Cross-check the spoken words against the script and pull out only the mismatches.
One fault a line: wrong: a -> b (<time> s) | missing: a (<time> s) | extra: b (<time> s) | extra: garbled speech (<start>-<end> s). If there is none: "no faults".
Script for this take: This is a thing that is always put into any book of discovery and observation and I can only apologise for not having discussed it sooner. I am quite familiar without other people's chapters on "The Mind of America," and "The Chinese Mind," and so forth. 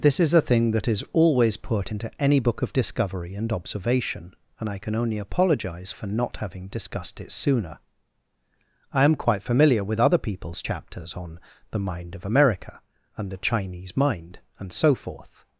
wrong: without -> with (9.8 s)